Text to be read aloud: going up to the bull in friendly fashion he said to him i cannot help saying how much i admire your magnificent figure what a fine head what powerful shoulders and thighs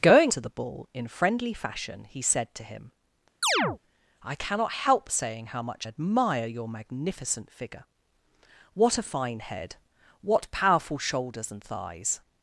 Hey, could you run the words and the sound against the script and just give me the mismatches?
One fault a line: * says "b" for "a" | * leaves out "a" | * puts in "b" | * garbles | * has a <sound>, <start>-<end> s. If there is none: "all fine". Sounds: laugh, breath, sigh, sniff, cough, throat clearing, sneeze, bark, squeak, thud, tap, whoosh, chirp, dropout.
* leaves out "up"
* has a chirp, 3.4-3.8 s
* leaves out "i"